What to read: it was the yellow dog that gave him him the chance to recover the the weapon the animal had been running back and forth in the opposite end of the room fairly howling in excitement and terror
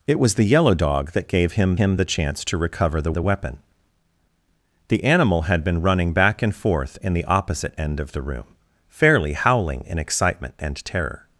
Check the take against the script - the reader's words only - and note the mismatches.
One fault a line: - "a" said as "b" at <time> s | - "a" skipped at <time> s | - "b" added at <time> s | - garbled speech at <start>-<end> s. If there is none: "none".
none